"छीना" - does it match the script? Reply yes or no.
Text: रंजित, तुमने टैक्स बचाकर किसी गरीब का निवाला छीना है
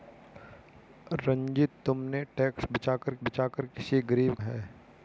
no